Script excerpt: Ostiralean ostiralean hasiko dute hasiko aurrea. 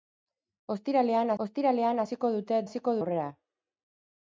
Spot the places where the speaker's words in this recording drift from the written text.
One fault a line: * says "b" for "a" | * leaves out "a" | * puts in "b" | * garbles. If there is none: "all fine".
all fine